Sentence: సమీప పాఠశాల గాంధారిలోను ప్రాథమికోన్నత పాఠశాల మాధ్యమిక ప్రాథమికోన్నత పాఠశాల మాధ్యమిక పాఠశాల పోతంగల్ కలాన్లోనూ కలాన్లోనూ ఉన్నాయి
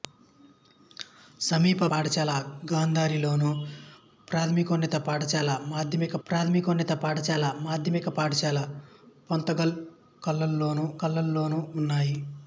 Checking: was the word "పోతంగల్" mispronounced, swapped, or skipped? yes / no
no